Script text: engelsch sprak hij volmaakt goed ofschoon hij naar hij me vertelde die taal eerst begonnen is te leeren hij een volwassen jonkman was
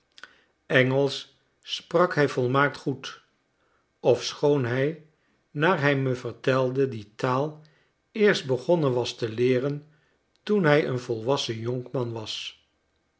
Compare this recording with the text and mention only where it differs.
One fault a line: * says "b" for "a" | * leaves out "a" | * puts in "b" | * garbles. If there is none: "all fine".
* says "was" for "is"
* puts in "toen"